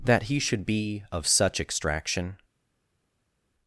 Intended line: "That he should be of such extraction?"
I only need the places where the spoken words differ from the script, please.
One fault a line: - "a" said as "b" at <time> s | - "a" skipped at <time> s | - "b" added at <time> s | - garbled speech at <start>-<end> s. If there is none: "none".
none